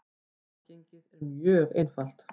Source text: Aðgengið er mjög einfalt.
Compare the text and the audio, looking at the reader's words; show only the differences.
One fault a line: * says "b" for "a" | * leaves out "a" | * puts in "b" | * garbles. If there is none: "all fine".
all fine